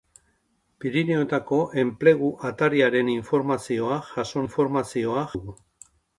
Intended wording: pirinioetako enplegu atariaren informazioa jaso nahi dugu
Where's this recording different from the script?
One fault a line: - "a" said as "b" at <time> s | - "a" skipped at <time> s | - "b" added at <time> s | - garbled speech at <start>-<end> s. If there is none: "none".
- "nahi" said as "informazioa" at 4.4 s